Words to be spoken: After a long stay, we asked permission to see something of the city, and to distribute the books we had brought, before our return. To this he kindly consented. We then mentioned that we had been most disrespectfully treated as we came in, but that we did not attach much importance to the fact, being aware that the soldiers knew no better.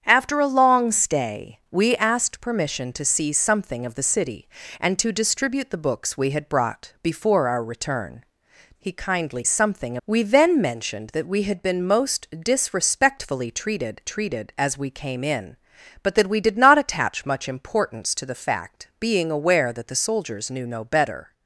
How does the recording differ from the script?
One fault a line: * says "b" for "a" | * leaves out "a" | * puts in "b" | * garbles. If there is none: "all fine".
* leaves out "To this"
* says "something" for "consented"
* puts in "treated"